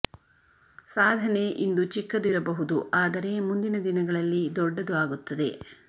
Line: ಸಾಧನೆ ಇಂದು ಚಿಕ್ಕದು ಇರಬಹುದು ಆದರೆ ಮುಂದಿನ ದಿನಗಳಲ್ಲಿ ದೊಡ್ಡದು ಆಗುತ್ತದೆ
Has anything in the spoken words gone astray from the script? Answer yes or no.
no